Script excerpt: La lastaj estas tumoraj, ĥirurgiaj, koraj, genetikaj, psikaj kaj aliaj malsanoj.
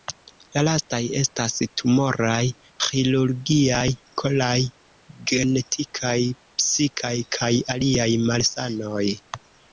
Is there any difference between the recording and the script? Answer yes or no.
no